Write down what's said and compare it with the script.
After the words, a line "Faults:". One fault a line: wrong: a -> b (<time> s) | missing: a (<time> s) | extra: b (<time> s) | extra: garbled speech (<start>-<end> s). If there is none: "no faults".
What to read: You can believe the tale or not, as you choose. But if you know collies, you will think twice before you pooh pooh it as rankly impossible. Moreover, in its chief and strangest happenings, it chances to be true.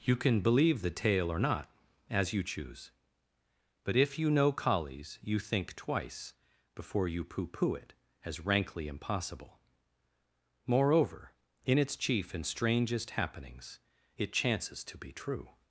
You can believe the tale or not, as you choose. But if you know collies, you think twice before you pooh pooh it as rankly impossible. Moreover, in its chief and strangest happenings, it chances to be true.
Faults:
missing: will (5.4 s)